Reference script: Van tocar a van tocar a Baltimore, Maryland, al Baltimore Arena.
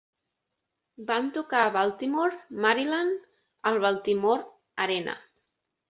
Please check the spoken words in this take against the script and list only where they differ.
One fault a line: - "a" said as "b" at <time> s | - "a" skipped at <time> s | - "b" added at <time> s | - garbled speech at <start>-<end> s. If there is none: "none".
- "van tocar a" skipped at 1.7 s